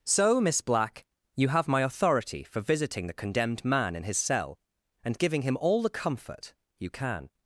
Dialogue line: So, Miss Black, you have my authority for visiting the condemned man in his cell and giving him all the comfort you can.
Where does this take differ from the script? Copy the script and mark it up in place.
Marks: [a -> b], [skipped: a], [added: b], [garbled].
So, Miss Black, you have my authority for visiting the condemned man in his cell and giving him all the comfort you can.